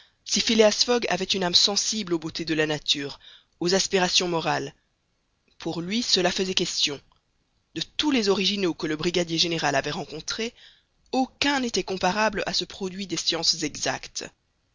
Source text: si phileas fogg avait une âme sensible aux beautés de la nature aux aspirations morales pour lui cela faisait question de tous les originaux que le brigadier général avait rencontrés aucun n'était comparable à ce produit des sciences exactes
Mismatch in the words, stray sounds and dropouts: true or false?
false